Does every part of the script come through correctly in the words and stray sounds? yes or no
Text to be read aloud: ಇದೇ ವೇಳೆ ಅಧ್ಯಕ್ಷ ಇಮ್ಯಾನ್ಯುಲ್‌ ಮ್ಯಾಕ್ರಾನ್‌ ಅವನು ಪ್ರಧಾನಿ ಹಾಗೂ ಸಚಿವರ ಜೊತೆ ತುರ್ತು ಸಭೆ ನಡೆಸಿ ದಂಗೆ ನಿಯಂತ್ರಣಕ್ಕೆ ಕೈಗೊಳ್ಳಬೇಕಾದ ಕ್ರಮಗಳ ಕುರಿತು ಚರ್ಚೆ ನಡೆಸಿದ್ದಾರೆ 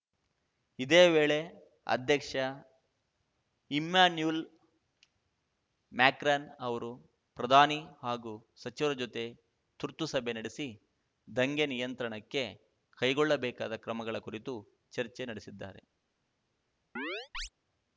no